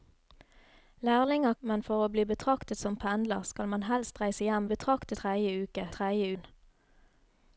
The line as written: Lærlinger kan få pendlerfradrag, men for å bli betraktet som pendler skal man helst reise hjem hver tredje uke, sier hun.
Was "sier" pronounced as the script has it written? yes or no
no